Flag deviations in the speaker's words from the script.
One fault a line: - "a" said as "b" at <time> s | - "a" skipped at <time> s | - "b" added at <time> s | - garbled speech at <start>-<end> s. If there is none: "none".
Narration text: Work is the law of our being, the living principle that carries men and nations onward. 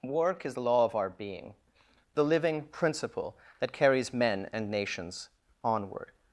none